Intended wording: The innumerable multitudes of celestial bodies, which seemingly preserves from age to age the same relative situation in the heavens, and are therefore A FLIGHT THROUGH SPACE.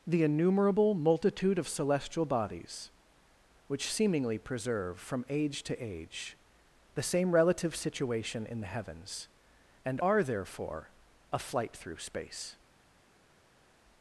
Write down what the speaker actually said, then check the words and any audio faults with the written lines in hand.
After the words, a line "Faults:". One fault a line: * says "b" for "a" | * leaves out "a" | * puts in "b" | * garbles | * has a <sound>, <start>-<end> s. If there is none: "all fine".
The innumerable multitude of celestial bodies, which seemingly preserve from age to age the same relative situation in the heavens, and are therefore A FLIGHT THROUGH SPACE.
Faults:
* says "multitude" for "multitudes"
* says "preserve" for "preserves"